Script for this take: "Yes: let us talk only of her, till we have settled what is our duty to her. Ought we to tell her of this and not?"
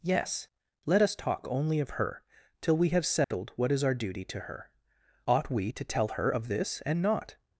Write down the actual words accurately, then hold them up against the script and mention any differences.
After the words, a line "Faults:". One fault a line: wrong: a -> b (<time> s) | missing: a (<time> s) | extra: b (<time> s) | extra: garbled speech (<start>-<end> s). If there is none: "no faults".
"Yes: let us talk only of her, till we have settled what is our duty to her. Ought we to tell her of this and not?"
Faults:
no faults